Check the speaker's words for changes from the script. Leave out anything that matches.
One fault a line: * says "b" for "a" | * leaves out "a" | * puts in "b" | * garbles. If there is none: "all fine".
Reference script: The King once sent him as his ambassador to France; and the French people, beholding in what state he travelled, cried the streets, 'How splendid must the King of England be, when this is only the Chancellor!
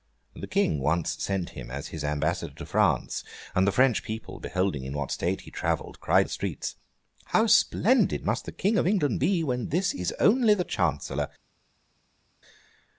all fine